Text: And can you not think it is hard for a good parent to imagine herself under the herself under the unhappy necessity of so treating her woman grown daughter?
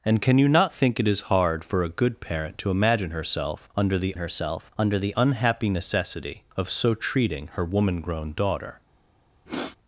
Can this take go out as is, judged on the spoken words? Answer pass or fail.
pass